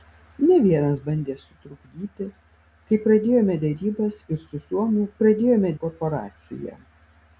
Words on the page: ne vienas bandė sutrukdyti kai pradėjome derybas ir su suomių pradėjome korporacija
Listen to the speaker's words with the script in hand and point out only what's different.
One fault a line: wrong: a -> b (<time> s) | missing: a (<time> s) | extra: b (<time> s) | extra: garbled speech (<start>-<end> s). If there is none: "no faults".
no faults